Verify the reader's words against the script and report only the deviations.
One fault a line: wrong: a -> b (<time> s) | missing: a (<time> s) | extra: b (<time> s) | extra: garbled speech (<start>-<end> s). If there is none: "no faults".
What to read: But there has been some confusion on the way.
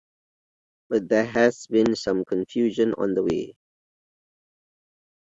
no faults